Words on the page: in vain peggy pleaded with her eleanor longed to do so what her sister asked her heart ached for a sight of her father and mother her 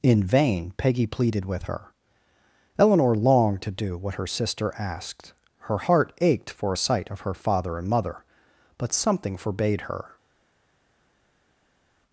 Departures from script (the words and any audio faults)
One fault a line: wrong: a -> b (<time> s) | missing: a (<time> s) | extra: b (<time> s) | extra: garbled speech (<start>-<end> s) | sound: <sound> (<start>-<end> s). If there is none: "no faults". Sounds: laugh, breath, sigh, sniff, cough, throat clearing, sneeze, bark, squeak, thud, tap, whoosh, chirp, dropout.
missing: so (4.0 s)
extra: but something forbade (8.8 s)